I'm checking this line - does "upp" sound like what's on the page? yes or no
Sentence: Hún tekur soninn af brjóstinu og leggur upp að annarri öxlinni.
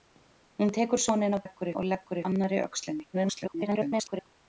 no